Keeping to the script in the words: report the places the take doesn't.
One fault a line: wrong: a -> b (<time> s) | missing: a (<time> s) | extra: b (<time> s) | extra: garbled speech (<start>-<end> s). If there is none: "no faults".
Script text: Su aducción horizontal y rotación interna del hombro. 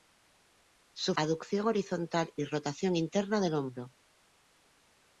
no faults